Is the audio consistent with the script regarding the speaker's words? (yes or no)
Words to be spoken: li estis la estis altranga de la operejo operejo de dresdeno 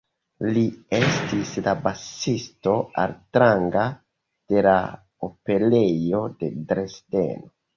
no